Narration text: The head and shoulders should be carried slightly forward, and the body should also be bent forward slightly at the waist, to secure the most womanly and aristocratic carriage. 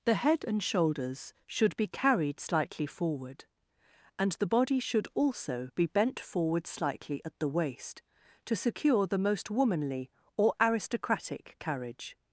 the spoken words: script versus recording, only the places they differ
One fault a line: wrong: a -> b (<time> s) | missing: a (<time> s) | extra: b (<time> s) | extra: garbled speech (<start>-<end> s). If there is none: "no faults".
wrong: and -> or (10.4 s)